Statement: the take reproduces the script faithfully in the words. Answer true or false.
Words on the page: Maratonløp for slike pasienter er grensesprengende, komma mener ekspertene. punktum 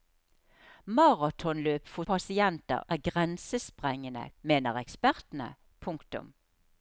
false